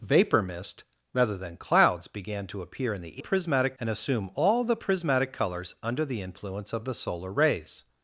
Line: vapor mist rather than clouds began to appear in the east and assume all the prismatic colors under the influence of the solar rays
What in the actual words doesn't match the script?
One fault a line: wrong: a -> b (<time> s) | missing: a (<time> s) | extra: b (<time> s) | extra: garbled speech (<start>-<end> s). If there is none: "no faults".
wrong: east -> prismatic (3.2 s)